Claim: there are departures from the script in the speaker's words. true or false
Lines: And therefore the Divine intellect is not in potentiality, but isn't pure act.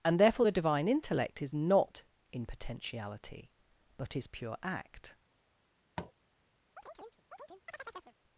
true